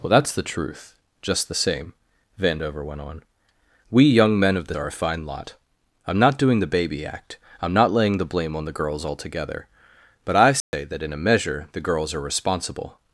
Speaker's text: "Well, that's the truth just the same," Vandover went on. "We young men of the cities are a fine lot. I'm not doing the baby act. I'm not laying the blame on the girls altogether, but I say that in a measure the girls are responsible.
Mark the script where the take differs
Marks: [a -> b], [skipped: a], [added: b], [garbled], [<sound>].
"Well, that's the truth just the same," Vandover went on. "We young men of the [skipped: cities] are a fine lot. I'm not doing the baby act. I'm not laying the blame on the girls altogether, but I say [dropout] that in a measure the girls are responsible.